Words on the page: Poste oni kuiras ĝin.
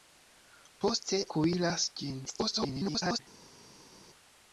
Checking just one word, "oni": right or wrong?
wrong